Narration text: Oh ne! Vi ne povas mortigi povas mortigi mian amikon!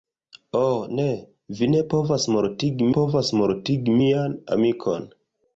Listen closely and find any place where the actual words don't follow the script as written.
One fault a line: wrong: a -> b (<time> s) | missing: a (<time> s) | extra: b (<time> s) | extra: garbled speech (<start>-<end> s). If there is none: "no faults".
no faults